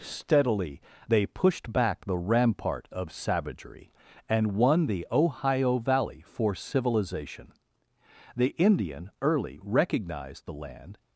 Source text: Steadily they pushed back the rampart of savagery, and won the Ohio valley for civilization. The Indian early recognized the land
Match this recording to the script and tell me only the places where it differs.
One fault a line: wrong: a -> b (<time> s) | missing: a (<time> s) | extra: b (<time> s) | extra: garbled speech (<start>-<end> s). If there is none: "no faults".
no faults